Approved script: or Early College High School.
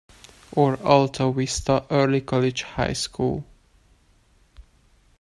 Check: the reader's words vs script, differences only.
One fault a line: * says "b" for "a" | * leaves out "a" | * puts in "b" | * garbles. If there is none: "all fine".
* puts in "Alta Vista"